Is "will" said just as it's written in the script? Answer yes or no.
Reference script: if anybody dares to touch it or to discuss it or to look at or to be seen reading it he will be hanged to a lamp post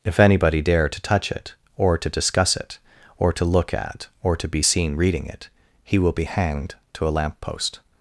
yes